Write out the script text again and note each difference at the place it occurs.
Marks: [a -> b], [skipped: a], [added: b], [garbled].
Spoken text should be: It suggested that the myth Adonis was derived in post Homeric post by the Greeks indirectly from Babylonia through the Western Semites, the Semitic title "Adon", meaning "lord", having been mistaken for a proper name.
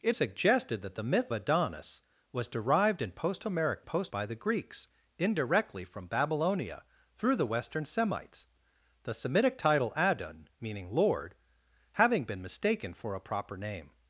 It suggested that the myth Adonis was derived in post Homeric post by the Greeks indirectly from Babylonia through the Western Semites, the Semitic title "Adon", meaning "lord", having been mistaken for a proper name.